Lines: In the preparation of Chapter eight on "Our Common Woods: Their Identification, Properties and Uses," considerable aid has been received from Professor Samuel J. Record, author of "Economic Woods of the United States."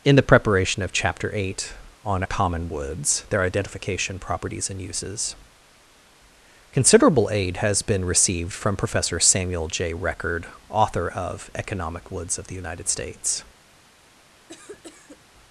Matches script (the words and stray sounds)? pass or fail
fail